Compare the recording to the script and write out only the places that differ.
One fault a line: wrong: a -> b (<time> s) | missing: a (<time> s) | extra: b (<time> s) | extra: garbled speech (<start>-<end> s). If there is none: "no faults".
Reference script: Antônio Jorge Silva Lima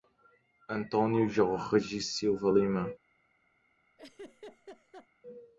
no faults